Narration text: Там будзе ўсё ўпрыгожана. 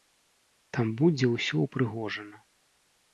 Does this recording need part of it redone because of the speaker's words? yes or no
no